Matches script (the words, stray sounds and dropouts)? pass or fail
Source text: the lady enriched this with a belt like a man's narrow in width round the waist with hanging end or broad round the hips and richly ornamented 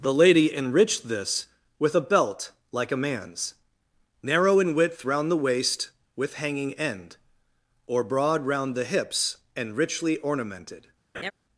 fail